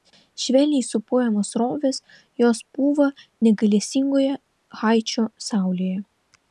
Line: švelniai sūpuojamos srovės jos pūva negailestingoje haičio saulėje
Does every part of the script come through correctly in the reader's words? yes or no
yes